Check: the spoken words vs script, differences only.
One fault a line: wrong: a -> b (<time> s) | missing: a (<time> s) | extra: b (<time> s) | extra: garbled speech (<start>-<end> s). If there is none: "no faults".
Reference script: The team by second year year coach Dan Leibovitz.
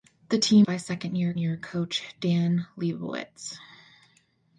no faults